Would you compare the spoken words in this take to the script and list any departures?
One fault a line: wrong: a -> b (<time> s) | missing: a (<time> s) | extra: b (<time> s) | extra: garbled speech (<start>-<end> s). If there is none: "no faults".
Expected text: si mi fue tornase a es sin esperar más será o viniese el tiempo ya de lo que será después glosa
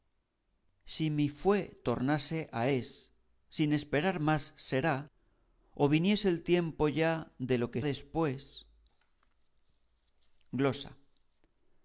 missing: será (7.8 s)